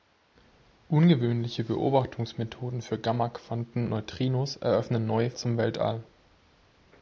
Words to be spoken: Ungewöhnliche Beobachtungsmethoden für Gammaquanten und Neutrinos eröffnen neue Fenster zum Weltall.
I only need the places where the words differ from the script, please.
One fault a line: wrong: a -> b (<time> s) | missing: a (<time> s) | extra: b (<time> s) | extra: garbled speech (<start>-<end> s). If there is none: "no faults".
missing: und (3.9 s)
missing: Fenster (5.3 s)